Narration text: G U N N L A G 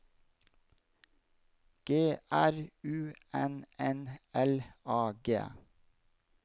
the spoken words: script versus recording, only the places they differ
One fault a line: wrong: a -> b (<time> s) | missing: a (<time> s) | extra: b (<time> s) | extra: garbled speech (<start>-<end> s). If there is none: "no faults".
extra: R (2.3 s)